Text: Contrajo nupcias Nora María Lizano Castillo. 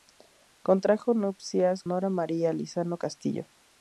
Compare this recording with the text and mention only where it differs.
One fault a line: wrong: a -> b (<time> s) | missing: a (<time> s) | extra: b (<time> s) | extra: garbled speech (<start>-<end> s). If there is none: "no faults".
no faults